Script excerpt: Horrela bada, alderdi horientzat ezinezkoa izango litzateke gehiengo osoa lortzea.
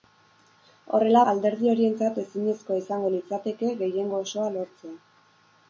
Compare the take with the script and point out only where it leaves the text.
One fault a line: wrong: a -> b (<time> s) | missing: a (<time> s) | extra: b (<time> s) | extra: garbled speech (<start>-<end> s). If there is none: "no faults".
missing: bada (1.2 s)